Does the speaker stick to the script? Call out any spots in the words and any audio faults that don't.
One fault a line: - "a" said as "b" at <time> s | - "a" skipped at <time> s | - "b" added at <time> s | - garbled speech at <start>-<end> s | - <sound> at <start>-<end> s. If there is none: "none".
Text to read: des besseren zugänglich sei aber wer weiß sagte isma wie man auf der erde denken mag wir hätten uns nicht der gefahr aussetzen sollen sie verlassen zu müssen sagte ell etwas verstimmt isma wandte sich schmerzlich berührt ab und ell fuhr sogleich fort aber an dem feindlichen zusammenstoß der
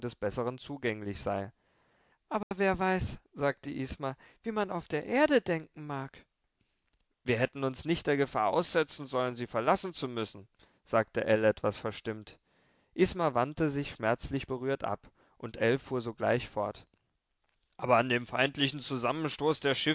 - dropout at 2.4-2.5 s